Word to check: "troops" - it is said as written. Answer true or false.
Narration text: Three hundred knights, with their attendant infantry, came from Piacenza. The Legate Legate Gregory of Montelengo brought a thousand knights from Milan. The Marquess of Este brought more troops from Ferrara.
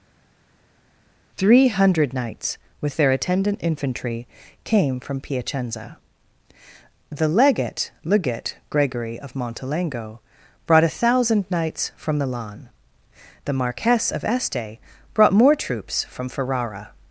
true